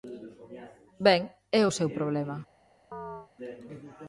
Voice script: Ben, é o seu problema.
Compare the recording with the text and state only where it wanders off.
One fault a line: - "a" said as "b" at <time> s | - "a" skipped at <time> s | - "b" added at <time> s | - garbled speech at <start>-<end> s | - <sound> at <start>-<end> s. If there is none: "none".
- chirp at 2.9-3.3 s